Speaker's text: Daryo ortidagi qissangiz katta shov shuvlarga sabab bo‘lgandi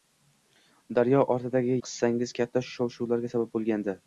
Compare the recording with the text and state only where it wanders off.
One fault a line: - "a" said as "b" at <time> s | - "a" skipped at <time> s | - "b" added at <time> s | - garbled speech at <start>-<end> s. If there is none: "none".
none